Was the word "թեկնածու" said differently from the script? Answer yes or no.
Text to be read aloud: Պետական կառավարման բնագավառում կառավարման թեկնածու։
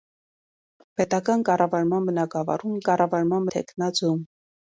no